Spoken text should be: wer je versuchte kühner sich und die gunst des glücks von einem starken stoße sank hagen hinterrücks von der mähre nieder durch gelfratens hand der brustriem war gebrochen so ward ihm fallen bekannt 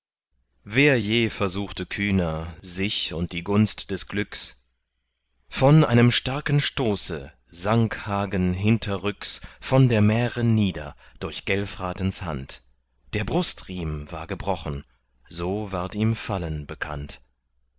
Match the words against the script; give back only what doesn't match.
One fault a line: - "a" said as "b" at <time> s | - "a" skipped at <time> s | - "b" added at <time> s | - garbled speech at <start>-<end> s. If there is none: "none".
none